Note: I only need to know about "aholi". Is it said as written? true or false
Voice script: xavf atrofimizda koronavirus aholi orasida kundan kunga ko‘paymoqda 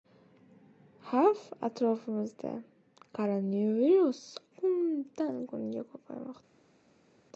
false